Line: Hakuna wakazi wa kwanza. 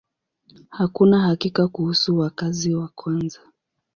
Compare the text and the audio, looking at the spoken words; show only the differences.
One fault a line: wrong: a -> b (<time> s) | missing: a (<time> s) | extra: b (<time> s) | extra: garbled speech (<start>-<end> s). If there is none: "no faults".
extra: hakika kuhusu (1.2 s)